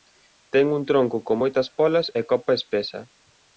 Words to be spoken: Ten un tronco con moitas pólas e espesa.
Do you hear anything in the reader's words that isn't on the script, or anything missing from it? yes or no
yes